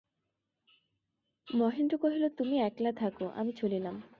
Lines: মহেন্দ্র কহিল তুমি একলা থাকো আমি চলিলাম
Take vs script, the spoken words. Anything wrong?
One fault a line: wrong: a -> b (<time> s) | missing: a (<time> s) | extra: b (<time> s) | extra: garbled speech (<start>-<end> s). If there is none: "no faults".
no faults